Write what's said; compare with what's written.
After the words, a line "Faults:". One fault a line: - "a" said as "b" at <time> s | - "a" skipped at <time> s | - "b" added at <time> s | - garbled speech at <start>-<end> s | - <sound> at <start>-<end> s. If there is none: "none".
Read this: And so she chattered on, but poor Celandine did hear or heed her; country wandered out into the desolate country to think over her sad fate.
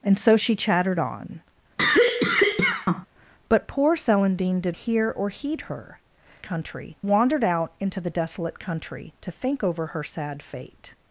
And so she chattered on, but poor Celandine did hear or heed her; country wandered out into the desolate country to think over her sad fate.
Faults:
- cough at 1.8-3.1 s